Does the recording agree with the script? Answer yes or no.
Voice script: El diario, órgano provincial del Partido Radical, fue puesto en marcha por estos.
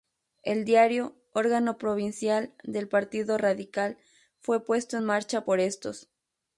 yes